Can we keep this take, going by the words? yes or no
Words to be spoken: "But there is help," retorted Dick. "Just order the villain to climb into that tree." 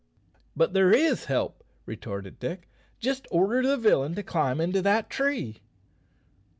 yes